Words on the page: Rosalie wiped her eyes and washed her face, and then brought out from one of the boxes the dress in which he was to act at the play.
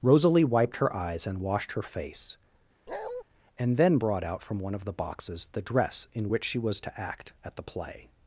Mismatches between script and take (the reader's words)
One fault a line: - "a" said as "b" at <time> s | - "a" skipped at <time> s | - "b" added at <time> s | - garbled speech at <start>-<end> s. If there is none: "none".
- "he" said as "she" at 6.4 s